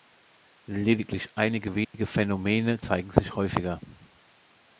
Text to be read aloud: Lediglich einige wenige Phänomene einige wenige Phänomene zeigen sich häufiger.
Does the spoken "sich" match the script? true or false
true